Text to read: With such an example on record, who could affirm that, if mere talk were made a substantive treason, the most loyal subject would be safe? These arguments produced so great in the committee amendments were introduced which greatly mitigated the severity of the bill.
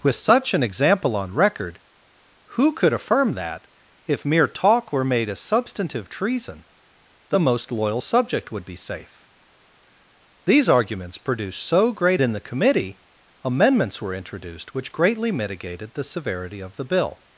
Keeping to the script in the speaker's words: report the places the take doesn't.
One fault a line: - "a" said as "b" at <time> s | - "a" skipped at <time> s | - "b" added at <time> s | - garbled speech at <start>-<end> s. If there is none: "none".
none